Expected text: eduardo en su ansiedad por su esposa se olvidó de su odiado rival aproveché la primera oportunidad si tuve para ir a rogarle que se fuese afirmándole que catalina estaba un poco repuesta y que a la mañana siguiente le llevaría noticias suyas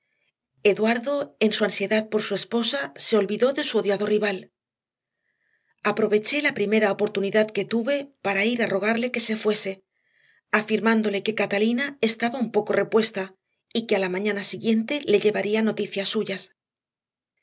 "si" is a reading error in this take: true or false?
true